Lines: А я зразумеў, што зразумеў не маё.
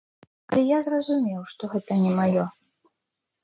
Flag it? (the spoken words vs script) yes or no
yes